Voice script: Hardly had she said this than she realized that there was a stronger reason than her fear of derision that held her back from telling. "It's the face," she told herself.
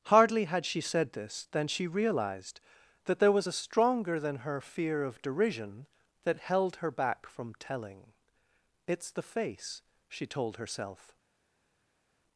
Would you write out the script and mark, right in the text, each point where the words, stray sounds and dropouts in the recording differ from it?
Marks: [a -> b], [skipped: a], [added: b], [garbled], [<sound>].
Hardly had she said this than she realized that there was a stronger [skipped: reason] than her fear of derision that held her back from telling. "It's the face," she told herself.